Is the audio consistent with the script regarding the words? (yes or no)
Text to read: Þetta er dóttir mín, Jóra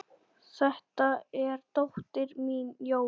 yes